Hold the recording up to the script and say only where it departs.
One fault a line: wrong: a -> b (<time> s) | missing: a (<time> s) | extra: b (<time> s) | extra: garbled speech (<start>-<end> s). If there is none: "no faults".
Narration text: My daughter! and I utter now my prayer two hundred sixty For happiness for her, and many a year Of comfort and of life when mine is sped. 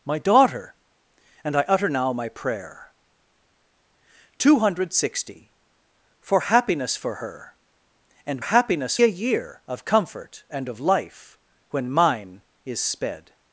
wrong: many -> happiness (8.4 s)